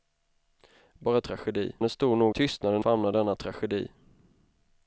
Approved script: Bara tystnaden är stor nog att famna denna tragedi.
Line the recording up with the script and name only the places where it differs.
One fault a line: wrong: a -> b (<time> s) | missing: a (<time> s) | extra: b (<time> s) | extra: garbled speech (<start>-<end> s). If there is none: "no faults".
wrong: tystnaden -> tragedi (1.2 s)
wrong: att -> tystnaden (2.3 s)